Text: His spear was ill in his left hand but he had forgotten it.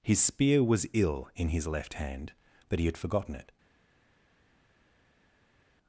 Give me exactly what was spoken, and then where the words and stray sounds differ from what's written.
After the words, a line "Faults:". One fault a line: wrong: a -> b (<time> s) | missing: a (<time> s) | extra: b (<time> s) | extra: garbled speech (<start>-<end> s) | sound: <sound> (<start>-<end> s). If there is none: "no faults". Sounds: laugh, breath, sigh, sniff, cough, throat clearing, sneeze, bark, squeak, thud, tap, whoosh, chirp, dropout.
His spear was ill in his left hand but he had forgotten it.
Faults:
no faults